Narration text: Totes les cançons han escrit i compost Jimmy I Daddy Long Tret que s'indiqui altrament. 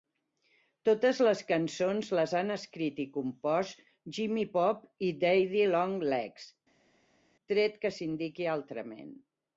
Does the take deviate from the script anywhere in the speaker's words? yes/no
yes